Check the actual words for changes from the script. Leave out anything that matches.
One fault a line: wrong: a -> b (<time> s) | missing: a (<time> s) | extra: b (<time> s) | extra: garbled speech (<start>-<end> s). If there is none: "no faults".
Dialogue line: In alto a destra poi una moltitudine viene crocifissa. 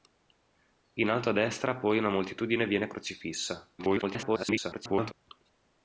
extra: garbled speech (3.8-5.1 s)